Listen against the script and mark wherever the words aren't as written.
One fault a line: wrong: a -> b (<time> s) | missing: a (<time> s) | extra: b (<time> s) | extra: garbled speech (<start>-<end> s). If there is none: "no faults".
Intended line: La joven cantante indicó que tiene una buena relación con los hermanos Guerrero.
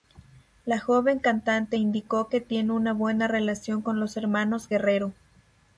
no faults